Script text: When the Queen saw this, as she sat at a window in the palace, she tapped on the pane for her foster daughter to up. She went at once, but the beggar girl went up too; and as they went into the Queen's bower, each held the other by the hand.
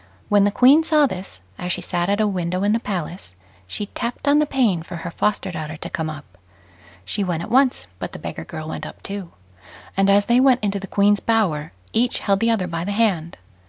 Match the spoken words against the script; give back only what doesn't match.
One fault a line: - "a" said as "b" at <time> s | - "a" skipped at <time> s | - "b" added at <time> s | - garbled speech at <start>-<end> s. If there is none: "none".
- "come" added at 5.9 s